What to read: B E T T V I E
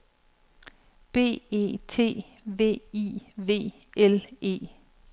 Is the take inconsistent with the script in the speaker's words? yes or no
yes